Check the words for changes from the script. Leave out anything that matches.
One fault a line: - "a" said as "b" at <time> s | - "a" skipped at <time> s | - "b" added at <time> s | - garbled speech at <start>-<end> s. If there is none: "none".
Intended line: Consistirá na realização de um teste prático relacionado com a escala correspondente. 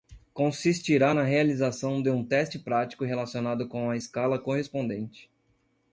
none